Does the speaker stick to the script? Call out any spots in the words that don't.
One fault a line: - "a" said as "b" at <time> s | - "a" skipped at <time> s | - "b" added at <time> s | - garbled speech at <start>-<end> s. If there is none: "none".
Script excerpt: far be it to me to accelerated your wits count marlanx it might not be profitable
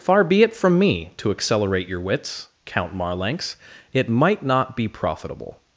- "to" said as "from" at 0.6 s
- "accelerated" said as "accelerate" at 1.3 s